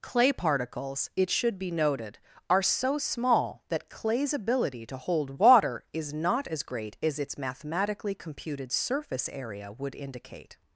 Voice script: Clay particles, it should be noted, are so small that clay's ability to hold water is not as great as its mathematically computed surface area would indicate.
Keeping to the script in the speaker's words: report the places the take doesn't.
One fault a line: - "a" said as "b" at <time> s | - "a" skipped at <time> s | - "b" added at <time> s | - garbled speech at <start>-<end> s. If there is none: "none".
none